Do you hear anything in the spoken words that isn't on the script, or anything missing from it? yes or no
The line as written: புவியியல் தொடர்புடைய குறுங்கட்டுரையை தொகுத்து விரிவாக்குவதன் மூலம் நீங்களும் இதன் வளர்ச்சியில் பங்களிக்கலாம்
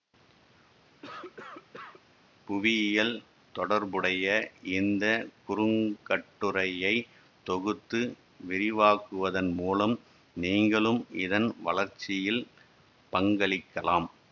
yes